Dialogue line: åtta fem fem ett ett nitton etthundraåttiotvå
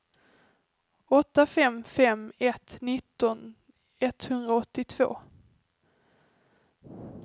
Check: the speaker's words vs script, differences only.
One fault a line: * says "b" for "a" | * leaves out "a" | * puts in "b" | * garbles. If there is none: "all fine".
* leaves out "ett"